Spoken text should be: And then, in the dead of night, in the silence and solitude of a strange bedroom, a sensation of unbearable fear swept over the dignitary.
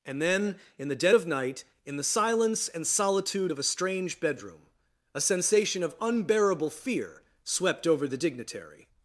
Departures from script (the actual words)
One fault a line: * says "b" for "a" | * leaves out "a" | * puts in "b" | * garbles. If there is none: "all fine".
all fine